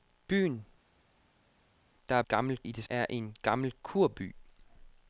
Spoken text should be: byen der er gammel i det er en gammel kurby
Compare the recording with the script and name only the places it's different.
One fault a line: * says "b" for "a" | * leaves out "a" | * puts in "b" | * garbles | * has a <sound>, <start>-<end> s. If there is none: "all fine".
all fine